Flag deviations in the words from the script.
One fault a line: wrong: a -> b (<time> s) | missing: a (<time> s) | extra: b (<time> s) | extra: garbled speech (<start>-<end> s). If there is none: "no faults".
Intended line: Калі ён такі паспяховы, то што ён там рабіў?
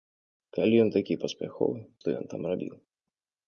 missing: то (1.8 s)